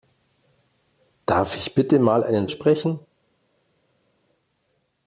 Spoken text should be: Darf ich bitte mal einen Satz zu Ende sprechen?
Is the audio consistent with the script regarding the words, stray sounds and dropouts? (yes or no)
no